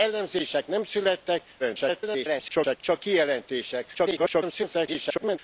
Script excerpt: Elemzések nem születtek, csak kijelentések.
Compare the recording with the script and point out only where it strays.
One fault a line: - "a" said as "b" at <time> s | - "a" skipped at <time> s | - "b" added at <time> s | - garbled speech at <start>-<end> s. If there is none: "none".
- garbled speech at 1.6-2.8 s
- garbled speech at 3.9-5.4 s